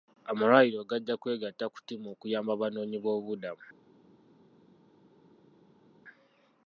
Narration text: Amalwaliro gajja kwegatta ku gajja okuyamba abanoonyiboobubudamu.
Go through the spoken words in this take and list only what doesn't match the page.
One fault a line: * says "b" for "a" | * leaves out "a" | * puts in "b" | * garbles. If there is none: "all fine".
* says "ttiimu" for "gajja"